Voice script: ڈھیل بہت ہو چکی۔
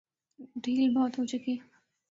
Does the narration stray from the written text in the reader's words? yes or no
no